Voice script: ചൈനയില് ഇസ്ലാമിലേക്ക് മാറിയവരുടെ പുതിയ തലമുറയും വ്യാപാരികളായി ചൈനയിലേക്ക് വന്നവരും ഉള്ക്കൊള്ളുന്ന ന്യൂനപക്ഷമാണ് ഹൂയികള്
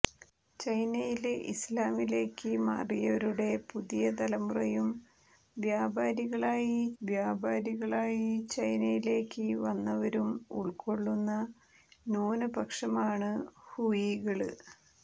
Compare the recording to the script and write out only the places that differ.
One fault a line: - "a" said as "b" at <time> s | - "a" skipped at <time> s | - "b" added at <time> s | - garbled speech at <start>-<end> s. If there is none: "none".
- "വ്യാപാരികളായി" added at 7.0 s